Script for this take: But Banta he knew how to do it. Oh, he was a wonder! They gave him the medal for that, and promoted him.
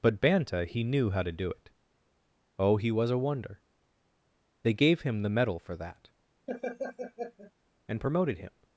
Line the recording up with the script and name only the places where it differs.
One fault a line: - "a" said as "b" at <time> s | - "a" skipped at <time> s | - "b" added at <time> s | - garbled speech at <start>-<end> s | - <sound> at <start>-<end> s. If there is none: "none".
- laugh at 6.5-7.5 s